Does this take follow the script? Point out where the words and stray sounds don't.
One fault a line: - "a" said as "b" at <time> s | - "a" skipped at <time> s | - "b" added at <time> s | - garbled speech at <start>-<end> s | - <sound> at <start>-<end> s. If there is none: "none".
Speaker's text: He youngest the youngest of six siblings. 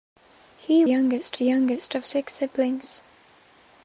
none